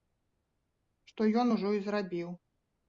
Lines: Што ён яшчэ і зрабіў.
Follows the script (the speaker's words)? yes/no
no